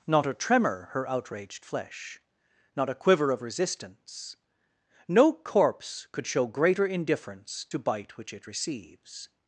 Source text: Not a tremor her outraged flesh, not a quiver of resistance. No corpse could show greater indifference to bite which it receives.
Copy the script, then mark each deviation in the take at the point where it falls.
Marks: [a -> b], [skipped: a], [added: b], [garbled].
Not a tremor her outraged flesh, not a quiver of resistance. No corpse could show greater indifference to bite which it receives.